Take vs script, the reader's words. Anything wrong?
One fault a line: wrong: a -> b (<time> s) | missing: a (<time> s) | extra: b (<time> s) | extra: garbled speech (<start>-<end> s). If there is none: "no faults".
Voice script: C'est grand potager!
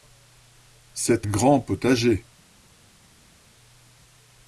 no faults